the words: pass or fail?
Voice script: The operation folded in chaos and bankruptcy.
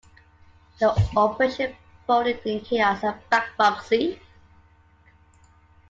pass